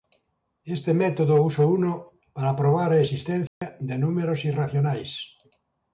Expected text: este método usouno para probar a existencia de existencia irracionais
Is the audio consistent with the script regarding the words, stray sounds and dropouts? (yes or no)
no